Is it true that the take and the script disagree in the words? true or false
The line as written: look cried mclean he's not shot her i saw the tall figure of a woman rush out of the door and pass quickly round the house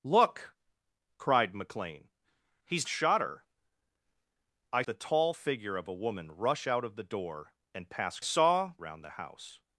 true